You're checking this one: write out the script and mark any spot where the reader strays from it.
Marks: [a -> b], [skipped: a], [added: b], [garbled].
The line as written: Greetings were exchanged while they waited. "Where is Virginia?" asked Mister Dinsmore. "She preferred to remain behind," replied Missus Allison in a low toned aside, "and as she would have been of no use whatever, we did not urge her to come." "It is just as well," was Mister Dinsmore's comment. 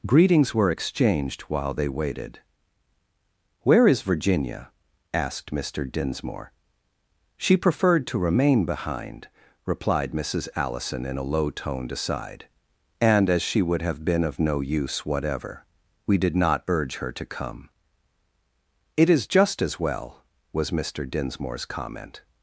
Greetings were exchanged while they waited. "Where is Virginia?" asked Mister Dinsmore. "She preferred to remain behind," replied Missus Allison in a low toned aside, "and as she would have been of no use whatever, we did not urge her to come." "It is just as well," was Mister Dinsmore's comment.